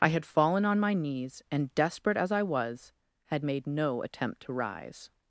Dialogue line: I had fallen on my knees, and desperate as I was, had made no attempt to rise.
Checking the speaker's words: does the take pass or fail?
pass